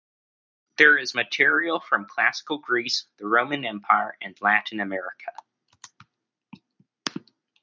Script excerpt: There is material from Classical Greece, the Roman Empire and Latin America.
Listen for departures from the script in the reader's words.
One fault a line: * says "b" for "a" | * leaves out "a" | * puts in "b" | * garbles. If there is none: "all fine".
all fine